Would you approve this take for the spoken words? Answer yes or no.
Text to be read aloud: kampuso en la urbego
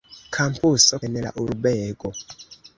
yes